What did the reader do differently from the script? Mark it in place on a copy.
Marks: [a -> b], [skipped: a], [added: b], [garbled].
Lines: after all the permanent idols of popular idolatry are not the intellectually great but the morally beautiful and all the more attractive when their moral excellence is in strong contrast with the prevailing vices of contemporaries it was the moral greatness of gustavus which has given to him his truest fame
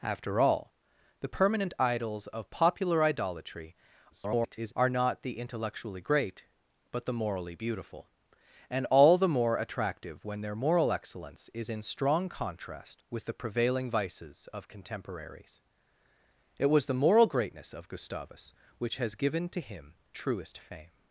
after all the permanent idols of popular idolatry [garbled] are not the intellectually great but the morally beautiful and all the more attractive when their moral excellence is in strong contrast with the prevailing vices of contemporaries it was the moral greatness of gustavus which has given to him [skipped: his] truest fame